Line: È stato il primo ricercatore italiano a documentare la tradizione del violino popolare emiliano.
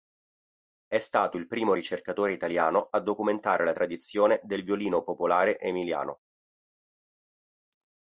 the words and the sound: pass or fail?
pass